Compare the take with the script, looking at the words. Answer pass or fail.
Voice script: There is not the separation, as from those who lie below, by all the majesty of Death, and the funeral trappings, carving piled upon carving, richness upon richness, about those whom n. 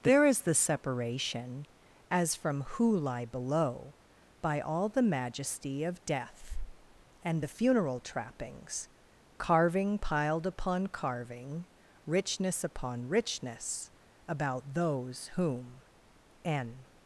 fail